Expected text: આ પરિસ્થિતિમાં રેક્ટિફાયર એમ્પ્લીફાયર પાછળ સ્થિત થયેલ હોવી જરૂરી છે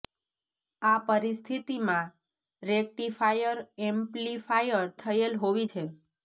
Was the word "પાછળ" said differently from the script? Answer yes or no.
yes